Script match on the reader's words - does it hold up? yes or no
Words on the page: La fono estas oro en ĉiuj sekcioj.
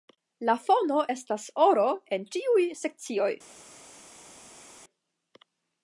yes